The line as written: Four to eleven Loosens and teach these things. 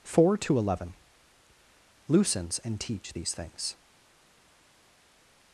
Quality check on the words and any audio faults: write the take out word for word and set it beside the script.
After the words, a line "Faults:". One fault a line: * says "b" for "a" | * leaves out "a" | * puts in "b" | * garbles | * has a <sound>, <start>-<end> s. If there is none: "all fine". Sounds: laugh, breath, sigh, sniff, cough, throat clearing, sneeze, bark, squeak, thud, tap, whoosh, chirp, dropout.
Four to eleven Loosens and teach these things.
Faults:
all fine